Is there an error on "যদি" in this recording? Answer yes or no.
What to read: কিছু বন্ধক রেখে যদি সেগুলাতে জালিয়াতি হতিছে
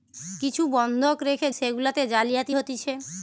yes